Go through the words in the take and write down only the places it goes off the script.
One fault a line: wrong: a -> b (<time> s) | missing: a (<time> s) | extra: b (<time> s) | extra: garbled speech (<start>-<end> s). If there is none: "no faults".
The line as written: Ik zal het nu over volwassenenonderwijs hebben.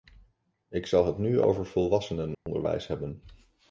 no faults